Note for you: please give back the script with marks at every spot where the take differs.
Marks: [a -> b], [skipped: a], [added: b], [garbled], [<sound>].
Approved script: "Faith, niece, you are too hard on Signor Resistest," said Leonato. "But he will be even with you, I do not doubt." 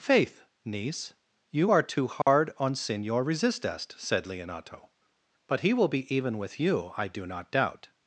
"Faith, niece, you are too hard [dropout] on Signor Resistest," said Leonato. "But he will be even with you, I do not doubt."